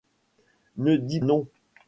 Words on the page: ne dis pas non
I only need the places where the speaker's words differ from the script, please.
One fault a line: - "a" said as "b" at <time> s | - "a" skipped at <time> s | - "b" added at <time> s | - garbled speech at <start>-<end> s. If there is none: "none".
- "pas" skipped at 1.2 s